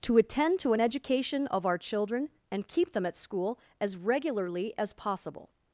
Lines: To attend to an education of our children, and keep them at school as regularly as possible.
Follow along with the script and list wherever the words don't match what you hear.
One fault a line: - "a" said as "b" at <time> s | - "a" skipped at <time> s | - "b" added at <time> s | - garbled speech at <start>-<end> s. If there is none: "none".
none